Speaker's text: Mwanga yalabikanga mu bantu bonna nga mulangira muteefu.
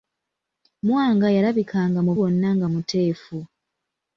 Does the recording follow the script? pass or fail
fail